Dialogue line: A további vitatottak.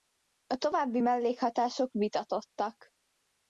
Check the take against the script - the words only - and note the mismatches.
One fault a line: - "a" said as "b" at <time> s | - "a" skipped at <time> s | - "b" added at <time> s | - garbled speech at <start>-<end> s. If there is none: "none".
- "mellékhatások" added at 1.0 s